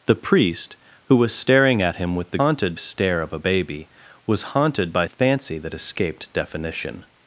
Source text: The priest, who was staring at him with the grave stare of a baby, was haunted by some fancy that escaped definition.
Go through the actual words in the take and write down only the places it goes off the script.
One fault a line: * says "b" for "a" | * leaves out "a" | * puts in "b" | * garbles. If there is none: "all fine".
* says "haunted" for "grave"
* leaves out "some"